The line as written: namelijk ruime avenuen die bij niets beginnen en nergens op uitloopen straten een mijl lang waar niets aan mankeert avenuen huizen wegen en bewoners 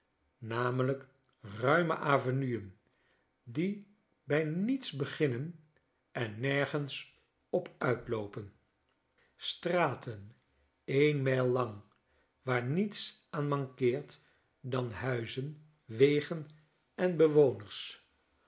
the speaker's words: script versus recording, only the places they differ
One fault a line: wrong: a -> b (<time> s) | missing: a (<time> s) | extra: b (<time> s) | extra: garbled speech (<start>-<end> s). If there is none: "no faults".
wrong: avenuen -> dan (14.6 s)